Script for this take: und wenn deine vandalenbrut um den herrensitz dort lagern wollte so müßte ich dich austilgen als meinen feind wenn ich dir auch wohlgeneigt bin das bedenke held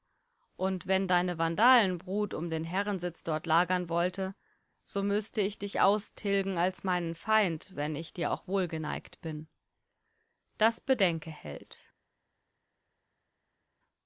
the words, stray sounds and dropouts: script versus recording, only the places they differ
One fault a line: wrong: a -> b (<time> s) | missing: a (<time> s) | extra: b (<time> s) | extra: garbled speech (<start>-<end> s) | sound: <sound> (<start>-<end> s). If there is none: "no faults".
no faults